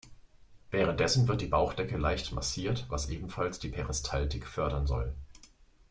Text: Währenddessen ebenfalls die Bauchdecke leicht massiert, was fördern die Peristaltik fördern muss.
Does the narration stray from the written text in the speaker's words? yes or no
yes